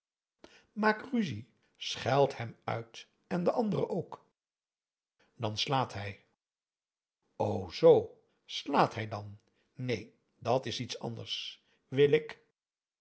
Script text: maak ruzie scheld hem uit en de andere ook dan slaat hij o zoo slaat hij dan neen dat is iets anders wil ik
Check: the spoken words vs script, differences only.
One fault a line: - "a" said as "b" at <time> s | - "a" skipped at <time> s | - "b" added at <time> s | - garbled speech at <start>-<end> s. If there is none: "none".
none